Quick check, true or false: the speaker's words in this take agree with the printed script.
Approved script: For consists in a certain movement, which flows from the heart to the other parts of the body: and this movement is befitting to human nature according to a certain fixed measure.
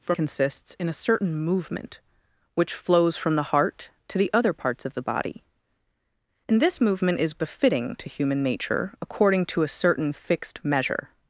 true